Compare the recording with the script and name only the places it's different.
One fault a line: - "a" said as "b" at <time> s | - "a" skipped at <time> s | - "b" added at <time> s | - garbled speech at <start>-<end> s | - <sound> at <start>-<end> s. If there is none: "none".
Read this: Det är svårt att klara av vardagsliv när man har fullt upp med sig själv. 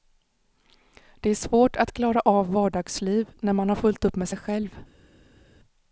none